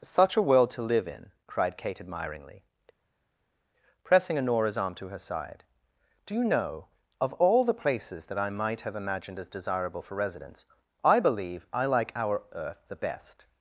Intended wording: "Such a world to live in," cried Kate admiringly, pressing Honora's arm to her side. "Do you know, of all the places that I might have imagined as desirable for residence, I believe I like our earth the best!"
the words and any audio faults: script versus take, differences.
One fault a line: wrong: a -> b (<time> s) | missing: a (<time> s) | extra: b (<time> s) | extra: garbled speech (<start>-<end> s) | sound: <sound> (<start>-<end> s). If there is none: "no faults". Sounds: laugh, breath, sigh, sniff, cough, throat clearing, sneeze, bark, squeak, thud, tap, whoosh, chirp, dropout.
no faults